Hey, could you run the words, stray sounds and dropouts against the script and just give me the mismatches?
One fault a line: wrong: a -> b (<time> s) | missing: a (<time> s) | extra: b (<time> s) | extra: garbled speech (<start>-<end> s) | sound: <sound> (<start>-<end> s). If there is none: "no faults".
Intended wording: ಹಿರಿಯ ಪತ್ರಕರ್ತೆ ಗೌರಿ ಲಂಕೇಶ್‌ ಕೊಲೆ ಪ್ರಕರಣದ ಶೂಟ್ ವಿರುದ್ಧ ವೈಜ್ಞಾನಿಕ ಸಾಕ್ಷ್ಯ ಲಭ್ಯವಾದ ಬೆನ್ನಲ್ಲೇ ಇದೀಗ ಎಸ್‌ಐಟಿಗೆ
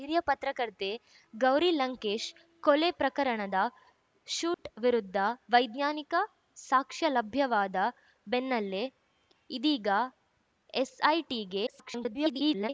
sound: dropout (4.5-4.6 s)
extra: garbled speech (11.7-12.7 s)